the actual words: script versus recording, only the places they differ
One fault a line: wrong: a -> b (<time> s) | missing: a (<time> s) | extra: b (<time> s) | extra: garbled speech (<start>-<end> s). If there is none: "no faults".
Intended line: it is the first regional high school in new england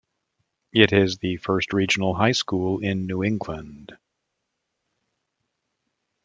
no faults